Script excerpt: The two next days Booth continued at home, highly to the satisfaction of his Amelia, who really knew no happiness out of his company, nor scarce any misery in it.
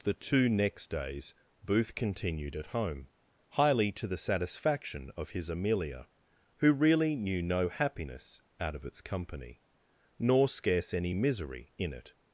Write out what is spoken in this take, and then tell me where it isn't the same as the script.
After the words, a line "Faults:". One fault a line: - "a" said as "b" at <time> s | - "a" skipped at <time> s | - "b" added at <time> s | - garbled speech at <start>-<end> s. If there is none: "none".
The two next days Booth continued at home, highly to the satisfaction of his Amelia, who really knew no happiness out of its company, nor scarce any misery in it.
Faults:
- "his" said as "its" at 8.8 s